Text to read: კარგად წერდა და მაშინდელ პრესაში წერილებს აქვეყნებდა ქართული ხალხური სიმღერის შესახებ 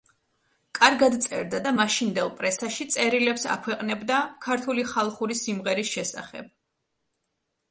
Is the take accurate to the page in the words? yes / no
yes